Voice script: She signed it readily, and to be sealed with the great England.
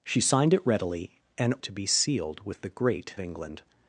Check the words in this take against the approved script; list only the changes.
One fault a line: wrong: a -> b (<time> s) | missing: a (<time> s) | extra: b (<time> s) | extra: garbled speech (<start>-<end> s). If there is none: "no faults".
no faults